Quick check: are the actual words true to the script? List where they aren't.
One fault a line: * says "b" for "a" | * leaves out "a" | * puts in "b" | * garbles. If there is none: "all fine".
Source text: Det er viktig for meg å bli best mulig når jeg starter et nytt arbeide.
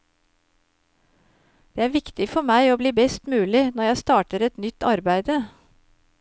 all fine